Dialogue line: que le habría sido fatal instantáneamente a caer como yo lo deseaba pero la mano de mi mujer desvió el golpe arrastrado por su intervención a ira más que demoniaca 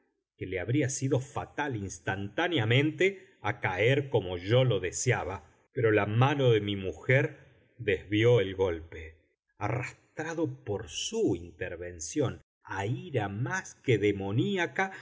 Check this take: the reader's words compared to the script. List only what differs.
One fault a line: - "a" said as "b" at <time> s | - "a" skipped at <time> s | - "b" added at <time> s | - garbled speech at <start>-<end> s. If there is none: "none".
none